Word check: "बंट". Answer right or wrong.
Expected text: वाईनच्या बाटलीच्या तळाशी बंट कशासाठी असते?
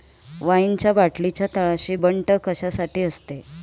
right